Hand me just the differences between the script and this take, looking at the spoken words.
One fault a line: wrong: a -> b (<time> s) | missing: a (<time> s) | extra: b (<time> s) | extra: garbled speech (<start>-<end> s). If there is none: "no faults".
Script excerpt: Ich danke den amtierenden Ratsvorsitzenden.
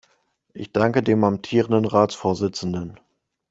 wrong: den -> dem (1.0 s)